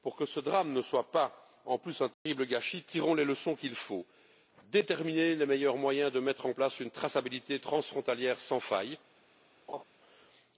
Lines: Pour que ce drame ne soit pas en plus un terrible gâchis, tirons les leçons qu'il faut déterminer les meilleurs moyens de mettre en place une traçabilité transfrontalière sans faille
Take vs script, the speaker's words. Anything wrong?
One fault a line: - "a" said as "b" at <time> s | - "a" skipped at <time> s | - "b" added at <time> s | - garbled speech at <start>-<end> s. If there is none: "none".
none